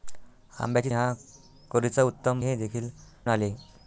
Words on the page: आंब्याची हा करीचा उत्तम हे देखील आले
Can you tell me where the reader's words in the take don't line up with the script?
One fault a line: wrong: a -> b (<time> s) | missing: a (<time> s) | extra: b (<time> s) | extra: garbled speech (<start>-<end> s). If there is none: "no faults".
no faults